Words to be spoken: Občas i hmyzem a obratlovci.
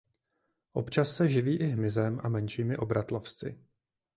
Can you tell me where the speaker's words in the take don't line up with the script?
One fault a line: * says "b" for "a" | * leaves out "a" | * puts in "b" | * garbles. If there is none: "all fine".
* puts in "se živí"
* puts in "menšími"